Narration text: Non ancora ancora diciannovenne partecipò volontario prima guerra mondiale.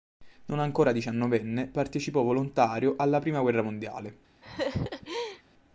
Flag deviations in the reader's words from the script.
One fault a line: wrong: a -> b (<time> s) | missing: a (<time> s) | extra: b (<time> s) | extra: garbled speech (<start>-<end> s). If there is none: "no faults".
missing: ancora (0.9 s)
extra: alla (3.0 s)